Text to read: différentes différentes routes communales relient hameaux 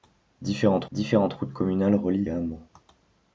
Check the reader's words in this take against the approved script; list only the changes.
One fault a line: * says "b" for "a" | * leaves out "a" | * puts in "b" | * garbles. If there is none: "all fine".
all fine